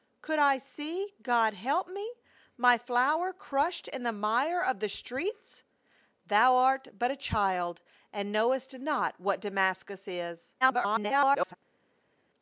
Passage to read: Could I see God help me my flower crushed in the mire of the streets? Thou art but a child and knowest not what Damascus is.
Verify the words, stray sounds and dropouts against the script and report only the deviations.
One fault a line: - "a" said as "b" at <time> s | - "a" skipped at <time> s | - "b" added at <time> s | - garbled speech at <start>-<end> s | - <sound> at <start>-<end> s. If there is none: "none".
- garbled speech at 10.6-11.6 s